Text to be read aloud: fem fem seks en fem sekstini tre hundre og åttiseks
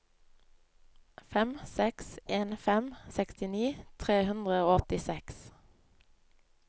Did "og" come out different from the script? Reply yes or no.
no